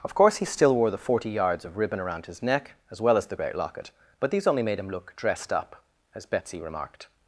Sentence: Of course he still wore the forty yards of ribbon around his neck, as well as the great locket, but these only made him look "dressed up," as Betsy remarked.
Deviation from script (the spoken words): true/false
false